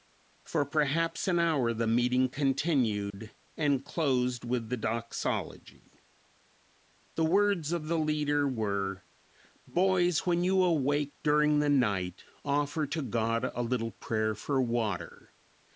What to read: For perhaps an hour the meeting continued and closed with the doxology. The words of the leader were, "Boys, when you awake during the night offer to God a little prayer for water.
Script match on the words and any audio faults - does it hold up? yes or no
no